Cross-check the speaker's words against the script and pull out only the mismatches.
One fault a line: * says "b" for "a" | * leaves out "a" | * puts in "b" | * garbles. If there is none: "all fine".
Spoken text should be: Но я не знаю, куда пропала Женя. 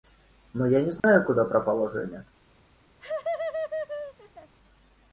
all fine